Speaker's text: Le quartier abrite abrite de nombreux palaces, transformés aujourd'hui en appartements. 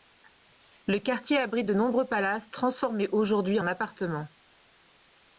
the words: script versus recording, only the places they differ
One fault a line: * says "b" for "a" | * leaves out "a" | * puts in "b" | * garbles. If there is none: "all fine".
* leaves out "abrite"